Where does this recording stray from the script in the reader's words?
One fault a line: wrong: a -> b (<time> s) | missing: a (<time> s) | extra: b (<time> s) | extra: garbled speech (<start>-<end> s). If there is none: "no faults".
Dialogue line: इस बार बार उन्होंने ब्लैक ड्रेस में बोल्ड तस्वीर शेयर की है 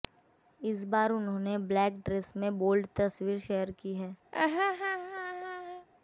missing: बार (1.1 s)